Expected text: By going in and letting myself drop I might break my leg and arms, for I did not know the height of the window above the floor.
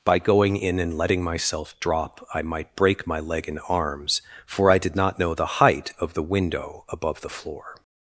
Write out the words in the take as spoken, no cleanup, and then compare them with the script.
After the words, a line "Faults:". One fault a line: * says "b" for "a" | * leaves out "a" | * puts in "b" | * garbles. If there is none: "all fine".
By going in and letting myself drop I might break my leg and arms, for I did not know the height of the window above the floor.
Faults:
all fine